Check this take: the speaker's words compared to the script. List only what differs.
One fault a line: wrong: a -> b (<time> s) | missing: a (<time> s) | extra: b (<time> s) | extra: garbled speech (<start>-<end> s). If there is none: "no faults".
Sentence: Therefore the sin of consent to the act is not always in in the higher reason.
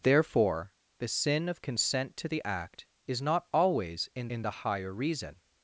no faults